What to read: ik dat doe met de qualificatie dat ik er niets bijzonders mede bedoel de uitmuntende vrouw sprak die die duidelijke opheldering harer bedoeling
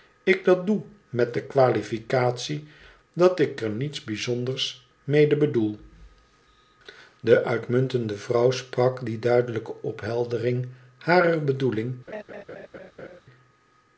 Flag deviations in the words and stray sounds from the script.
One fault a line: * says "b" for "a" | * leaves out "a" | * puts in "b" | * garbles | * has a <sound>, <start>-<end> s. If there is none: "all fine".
* leaves out "die"
* has a laugh, 12.1-13.2 s